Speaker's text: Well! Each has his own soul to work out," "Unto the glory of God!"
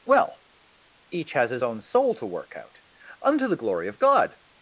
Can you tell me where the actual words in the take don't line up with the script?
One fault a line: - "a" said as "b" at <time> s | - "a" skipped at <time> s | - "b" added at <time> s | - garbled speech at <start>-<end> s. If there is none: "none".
none